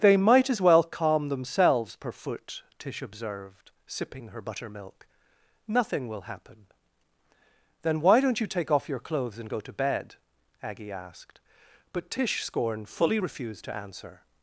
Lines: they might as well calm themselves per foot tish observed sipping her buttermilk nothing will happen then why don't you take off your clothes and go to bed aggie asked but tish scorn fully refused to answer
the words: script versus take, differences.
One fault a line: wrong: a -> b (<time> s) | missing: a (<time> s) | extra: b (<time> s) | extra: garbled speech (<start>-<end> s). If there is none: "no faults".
no faults